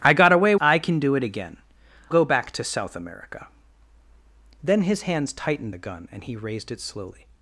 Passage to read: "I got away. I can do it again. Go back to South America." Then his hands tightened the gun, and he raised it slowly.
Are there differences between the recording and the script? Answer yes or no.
no